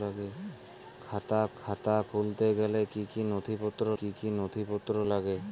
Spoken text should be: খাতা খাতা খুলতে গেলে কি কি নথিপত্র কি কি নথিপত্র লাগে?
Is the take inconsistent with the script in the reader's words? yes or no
no